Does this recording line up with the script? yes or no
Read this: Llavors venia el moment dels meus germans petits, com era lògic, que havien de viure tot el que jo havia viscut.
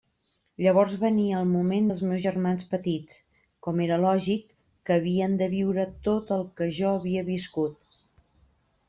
yes